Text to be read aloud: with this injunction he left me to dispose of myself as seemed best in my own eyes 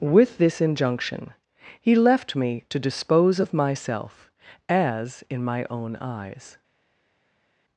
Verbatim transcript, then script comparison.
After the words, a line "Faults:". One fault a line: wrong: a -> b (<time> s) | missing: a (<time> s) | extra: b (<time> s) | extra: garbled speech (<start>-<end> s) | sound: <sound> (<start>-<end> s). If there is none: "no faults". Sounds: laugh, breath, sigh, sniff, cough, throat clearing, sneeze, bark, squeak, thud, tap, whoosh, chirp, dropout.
with this injunction he left me to dispose of myself as in my own eyes
Faults:
missing: seemed best (5.2 s)